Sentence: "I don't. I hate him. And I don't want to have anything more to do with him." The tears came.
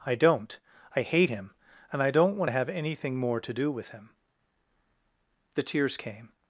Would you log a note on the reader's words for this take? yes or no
no